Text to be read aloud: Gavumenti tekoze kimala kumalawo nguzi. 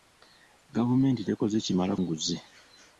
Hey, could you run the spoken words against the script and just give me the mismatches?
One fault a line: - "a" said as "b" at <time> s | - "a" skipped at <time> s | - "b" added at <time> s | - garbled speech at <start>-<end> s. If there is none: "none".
- "kumalawo" skipped at 1.9 s